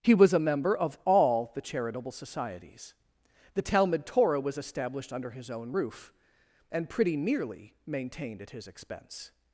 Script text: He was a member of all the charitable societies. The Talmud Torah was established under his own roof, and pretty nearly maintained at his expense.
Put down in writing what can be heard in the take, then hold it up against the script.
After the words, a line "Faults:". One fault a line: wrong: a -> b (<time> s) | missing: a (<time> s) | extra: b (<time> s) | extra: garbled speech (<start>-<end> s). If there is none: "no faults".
He was a member of all the charitable societies. The Talmud Torah was established under his own roof, and pretty nearly maintained at his expense.
Faults:
no faults